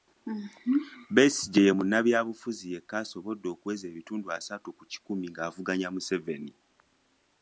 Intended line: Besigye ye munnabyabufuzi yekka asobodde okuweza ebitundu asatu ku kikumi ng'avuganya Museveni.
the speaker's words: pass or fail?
pass